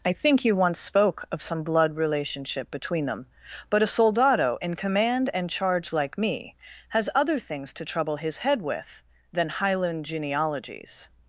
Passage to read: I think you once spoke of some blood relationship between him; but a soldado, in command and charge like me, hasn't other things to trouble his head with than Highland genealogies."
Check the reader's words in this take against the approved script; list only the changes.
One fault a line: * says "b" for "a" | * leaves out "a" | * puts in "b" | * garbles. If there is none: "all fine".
* says "them" for "him"
* says "has" for "hasn't"